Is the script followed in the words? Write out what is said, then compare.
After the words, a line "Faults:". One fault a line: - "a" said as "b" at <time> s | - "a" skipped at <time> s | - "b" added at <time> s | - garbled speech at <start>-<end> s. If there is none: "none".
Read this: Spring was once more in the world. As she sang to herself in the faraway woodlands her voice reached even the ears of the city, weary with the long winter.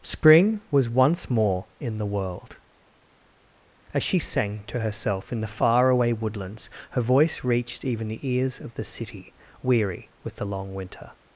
Spring was once more in the world. As she sang to herself in the faraway woodlands her voice reached even the ears of the city, weary with the long winter.
Faults:
none